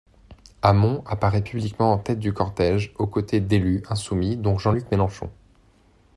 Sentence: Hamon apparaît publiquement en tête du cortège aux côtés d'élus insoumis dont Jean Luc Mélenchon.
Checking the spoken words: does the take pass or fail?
pass